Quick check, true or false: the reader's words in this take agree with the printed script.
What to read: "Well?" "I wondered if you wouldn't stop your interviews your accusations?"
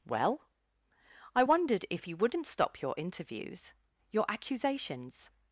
true